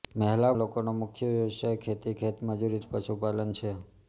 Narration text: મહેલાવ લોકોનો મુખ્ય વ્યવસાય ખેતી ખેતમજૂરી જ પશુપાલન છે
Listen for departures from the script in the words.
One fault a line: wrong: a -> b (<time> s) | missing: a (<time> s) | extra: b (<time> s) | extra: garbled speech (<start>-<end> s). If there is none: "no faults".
no faults